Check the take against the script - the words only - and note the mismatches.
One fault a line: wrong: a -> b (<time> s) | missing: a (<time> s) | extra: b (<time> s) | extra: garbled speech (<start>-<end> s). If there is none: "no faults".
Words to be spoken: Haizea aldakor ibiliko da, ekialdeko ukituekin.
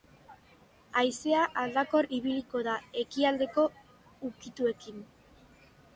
no faults